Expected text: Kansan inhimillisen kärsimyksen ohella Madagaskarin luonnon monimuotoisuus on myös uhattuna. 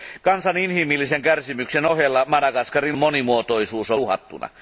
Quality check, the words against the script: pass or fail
fail